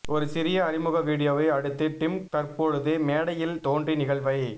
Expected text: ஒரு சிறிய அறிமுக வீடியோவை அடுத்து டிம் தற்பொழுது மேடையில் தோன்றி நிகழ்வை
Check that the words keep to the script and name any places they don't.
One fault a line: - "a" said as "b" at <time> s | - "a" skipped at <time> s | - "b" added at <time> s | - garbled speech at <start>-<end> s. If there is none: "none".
none